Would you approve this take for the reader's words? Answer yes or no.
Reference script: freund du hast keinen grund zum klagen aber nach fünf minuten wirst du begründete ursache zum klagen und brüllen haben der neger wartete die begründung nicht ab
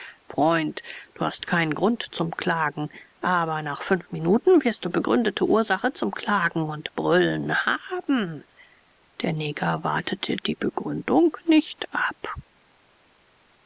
yes